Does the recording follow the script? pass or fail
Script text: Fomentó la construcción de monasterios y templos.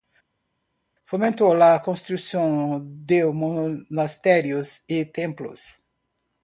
pass